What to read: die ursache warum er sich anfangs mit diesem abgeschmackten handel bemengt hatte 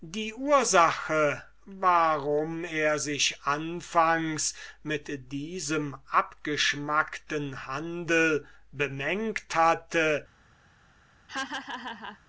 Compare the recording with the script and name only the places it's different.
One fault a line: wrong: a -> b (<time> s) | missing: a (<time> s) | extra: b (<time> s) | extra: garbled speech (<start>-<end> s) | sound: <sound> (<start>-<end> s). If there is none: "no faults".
sound: laugh (11.3-12.2 s)